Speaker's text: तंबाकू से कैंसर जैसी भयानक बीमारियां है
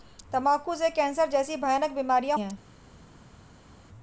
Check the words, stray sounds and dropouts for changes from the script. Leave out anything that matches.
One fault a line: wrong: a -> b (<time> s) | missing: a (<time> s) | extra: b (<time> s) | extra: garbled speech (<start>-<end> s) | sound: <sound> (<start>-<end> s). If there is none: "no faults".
no faults